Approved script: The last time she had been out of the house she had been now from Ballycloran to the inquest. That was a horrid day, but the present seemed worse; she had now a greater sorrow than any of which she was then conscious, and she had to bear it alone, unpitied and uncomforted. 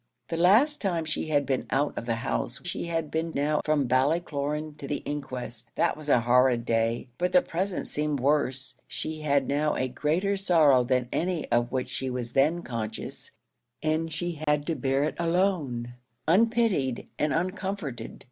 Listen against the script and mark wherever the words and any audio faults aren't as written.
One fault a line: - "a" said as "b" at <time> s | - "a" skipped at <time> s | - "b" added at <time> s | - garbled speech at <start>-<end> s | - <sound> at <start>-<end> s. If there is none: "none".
- dropout at 14.4-14.5 s